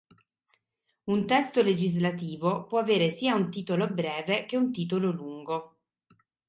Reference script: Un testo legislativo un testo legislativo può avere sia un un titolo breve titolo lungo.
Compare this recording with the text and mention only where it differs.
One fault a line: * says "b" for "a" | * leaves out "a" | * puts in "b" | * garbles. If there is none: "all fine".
* leaves out "un testo legislativo"
* leaves out "un"
* puts in "che un"